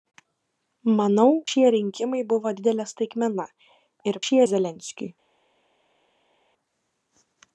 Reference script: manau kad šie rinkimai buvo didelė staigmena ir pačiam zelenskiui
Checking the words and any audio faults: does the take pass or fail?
fail